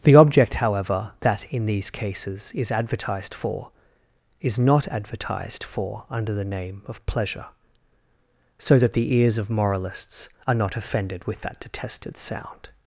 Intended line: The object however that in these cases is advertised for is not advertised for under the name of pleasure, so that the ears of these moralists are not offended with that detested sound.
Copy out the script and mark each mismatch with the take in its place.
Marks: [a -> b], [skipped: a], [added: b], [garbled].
The object however that in these cases is advertised for is not advertised for under the name of pleasure, so that the ears of [skipped: these] moralists are not offended with that detested sound.